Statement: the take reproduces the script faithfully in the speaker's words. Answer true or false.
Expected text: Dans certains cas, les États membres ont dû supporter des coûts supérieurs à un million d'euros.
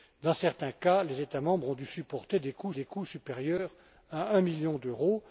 false